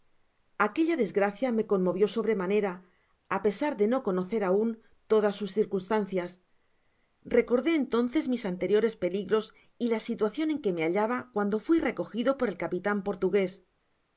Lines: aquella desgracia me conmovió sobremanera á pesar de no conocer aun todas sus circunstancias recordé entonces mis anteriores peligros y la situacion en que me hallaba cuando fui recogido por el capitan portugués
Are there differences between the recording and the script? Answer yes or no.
no